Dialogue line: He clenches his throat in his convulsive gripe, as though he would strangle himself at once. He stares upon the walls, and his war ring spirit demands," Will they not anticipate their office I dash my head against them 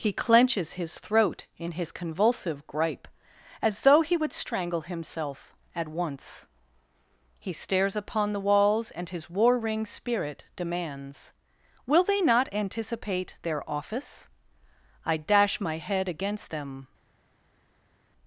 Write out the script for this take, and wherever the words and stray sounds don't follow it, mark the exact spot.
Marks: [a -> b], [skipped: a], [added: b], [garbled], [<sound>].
He clenches his throat in his convulsive gripe, as though he would strangle himself at once. He stares upon the walls, and his war ring spirit demands," Will they not anticipate their office I dash my head against them